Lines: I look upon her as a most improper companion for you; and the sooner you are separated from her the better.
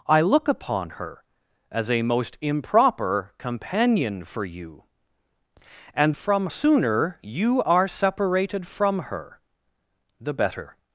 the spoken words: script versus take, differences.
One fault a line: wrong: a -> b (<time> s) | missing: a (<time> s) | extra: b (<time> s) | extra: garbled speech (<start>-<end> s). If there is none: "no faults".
wrong: the -> from (6.1 s)